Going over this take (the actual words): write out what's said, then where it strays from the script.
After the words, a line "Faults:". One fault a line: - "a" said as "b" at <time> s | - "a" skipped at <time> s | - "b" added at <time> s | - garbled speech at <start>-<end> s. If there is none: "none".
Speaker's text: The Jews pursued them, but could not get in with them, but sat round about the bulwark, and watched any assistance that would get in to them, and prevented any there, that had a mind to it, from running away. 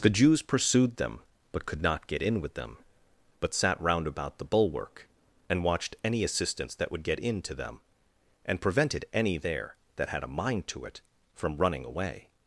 The Jews pursued them, but could not get in with them, but sat round about the bulwark, and watched any assistance that would get in to them, and prevented any there, that had a mind to it, from running away.
Faults:
none